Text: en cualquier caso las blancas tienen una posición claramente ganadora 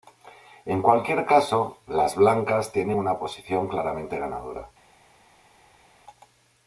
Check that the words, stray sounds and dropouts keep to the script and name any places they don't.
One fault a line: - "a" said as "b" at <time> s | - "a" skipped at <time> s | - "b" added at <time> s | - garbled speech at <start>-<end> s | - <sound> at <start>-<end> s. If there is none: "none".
none